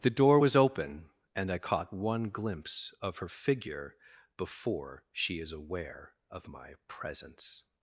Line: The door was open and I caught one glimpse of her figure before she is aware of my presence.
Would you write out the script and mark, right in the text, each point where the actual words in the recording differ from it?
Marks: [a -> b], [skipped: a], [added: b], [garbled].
The door was open and I caught one glimpse of her figure before she is aware of my presence.